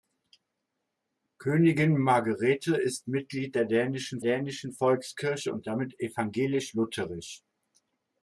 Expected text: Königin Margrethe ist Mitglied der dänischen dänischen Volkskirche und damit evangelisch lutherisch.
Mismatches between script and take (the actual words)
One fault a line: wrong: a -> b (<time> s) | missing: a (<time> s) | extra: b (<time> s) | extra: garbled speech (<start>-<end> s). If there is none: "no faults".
no faults